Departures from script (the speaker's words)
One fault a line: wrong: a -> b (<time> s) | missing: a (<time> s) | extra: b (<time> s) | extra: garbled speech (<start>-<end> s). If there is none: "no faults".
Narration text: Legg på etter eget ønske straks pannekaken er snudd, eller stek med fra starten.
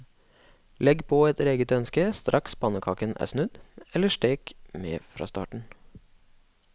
no faults